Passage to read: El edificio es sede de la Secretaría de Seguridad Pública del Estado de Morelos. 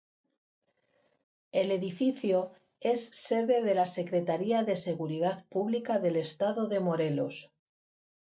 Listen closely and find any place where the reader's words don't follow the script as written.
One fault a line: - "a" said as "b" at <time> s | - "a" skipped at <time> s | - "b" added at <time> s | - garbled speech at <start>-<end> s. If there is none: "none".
none